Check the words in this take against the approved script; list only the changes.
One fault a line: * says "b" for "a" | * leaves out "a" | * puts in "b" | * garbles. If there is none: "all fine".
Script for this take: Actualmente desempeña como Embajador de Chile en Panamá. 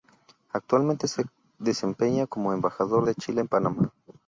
* puts in "se"